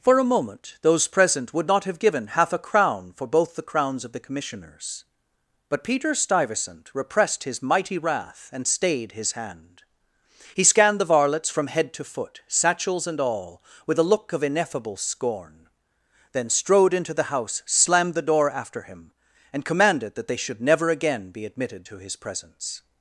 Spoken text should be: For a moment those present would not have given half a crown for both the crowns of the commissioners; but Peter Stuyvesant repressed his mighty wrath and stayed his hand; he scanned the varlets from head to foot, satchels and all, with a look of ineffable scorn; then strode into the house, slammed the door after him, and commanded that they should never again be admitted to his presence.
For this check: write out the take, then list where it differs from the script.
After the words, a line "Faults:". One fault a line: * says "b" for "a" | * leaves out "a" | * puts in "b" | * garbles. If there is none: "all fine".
For a moment those present would not have given half a crown for both the crowns of the commissioners; but Peter Stuyvesant repressed his mighty wrath and stayed his hand; he scanned the varlets from head to foot, satchels and all, with a look of ineffable scorn; then strode into the house, slammed the door after him, and commanded that they should never again be admitted to his presence.
Faults:
all fine